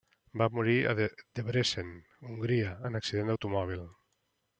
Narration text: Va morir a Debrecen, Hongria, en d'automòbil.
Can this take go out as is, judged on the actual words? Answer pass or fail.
fail